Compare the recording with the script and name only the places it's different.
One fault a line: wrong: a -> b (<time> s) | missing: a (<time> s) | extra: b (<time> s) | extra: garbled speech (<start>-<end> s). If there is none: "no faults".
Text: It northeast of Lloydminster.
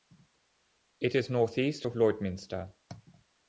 extra: is (1.1 s)